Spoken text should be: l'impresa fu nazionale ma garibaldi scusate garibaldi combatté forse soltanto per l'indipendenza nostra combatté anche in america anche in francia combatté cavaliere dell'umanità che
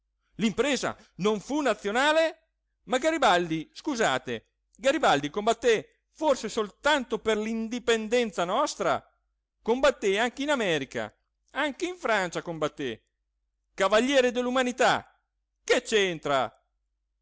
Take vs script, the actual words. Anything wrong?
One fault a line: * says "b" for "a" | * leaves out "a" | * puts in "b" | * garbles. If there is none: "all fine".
* puts in "non"